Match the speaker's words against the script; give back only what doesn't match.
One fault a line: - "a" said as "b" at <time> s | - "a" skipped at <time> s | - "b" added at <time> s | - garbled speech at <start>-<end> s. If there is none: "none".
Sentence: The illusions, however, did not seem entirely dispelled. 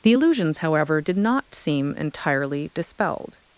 none